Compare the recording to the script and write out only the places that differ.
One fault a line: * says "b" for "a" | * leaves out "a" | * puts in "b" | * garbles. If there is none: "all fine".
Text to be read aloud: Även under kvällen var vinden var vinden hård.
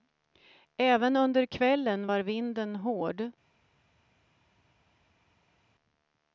* leaves out "var vinden"